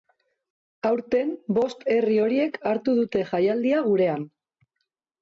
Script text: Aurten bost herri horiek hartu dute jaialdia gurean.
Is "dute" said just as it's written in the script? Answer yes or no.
yes